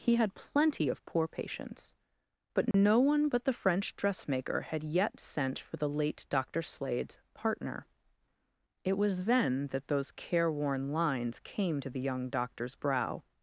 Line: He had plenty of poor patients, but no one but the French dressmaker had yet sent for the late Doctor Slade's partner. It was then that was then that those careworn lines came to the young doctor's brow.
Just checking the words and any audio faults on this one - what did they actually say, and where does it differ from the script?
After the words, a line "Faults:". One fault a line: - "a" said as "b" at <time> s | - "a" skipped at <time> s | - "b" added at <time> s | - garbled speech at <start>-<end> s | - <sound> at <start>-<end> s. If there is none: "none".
He had plenty of poor patients, but no one but the French dressmaker had yet sent for the late Doctor Slade's partner. It was then that those careworn lines came to the young doctor's brow.
Faults:
- dropout at 2.7-2.7 s
- "was then that" skipped at 9.9 s